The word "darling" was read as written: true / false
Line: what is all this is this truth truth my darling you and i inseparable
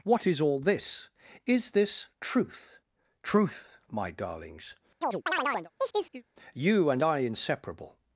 false